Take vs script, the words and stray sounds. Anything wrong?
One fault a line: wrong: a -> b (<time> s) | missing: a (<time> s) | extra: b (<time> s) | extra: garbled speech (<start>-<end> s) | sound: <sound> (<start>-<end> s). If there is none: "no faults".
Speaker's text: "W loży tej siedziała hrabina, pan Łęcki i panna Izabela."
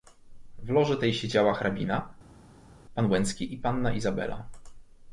no faults